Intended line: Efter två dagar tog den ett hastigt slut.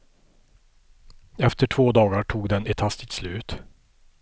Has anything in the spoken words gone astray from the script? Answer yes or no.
no